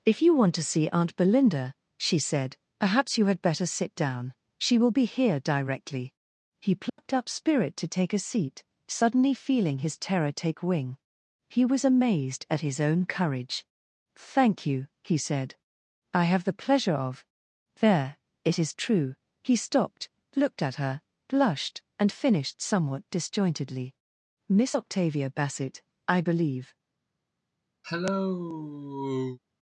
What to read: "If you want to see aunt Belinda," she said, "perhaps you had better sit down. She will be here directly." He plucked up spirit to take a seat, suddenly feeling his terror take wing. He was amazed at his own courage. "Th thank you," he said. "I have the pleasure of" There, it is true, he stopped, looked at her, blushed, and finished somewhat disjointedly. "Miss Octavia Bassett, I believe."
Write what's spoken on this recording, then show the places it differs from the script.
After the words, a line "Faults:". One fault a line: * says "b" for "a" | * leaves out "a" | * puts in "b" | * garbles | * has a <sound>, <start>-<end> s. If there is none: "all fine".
"If you want to see aunt Belinda," she said, "perhaps you had better sit down. She will be here directly." He plucked up spirit to take a seat, suddenly feeling his terror take wing. He was amazed at his own courage. thank you," he said. "I have the pleasure of" There, it is true, he stopped, looked at her, blushed, and finished somewhat disjointedly. "Miss Octavia Bassett, I believe."
Faults:
* has a dropout, 6.9-7.0 s
* leaves out "Th"
* has a cough, 27.8-29.4 s